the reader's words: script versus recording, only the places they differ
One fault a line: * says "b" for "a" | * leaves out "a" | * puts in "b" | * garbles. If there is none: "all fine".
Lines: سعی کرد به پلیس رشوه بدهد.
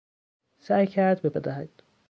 * leaves out "پلیس رشوه"